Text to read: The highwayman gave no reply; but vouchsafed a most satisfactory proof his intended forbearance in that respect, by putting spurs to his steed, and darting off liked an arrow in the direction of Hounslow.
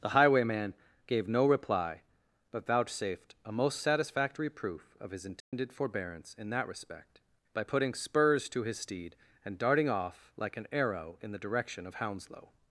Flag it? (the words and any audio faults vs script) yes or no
yes